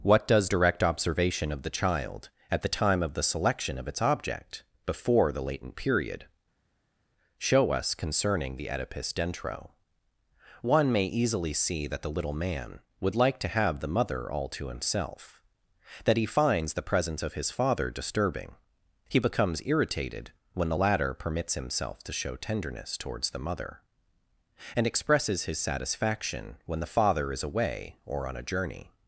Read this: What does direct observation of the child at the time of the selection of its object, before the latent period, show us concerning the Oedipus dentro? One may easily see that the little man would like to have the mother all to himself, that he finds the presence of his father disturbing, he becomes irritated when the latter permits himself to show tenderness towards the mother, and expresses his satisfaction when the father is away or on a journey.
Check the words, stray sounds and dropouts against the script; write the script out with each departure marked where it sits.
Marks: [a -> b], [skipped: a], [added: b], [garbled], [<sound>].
What does direct observation of the child at the time of the selection of its object, before the latent period, show us concerning the Oedipus dentro? One may easily see that the little man would like to have the mother all to himself, that he finds the presence of his father disturbing, he becomes irritated when the latter permits himself to show tenderness towards the mother, and expresses his satisfaction when the father is away or on a journey.